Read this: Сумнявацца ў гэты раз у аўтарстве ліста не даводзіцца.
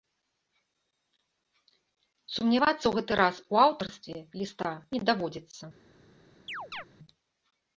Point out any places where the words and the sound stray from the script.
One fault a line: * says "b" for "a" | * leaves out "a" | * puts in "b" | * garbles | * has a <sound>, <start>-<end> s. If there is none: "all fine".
* has a chirp, 6.5-6.8 s